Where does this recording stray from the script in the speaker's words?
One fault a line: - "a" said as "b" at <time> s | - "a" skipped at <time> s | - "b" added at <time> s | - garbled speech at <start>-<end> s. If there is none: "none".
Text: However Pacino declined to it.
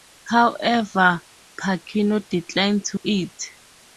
none